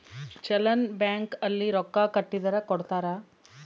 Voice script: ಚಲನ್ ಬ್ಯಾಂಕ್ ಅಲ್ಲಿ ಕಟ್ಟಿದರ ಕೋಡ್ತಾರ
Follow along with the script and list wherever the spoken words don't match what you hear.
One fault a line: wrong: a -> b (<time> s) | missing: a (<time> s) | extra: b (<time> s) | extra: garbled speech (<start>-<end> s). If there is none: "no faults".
extra: ರೊಕ್ಕ (1.7 s)